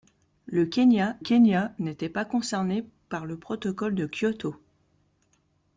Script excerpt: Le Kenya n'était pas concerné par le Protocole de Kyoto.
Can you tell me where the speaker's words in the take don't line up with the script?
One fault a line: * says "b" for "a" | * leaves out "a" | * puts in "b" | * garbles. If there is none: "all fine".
* puts in "Kenya"